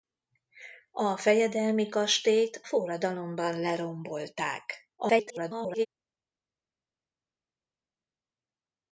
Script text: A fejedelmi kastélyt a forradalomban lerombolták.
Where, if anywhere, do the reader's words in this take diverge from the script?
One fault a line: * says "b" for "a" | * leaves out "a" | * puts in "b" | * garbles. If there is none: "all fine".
* leaves out "a"
* garbles